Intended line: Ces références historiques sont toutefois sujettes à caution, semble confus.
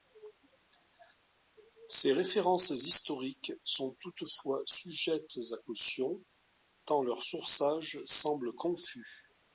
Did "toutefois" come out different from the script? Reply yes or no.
no